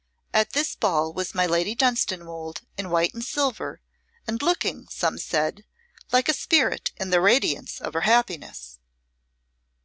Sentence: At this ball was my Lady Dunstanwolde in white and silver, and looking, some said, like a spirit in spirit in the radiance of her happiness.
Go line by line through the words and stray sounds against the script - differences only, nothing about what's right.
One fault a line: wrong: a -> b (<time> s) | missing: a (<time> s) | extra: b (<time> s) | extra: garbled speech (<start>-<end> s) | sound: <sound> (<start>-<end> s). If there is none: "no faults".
missing: spirit in (7.1 s)